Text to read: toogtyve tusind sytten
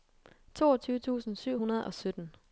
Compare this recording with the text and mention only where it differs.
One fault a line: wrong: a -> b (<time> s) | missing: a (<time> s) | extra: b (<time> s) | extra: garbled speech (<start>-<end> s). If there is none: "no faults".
extra: syv hundrede og (1.4 s)